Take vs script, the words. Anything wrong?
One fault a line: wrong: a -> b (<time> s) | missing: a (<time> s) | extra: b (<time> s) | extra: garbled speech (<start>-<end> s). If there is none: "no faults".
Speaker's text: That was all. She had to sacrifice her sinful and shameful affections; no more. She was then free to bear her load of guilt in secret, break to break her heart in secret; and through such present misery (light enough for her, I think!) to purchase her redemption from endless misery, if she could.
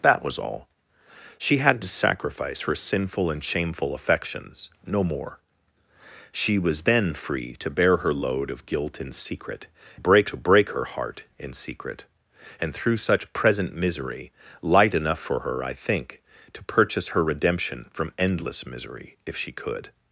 no faults